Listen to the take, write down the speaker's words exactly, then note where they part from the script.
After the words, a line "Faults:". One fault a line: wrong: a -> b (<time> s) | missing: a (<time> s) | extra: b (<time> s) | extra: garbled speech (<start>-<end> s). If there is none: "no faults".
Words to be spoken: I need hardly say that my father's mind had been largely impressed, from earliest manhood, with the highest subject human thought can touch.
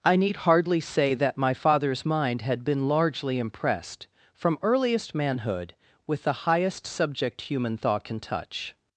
I need hardly say that my father's mind had been largely impressed, from earliest manhood, with the highest subject human thought can touch.
Faults:
no faults